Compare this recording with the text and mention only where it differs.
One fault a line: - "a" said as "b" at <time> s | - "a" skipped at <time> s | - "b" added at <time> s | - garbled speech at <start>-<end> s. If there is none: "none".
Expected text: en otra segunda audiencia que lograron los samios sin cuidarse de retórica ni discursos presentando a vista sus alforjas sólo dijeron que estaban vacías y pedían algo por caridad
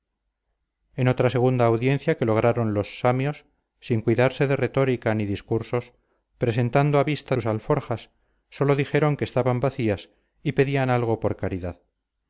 none